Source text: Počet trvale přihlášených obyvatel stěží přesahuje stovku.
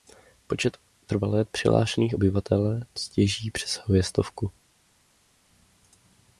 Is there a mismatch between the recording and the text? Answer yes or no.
no